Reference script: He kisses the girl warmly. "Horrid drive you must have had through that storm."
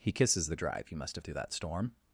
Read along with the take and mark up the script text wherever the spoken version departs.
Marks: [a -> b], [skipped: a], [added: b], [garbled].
He kisses the [skipped: girl warmly. "Horrid] drive you must have [skipped: had] through that storm."